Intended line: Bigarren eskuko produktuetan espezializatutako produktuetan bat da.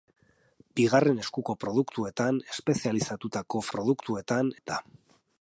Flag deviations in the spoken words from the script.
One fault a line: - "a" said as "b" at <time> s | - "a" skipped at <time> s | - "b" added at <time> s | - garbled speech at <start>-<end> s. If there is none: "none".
none